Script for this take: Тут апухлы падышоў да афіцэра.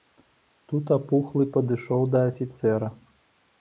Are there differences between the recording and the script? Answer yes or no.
no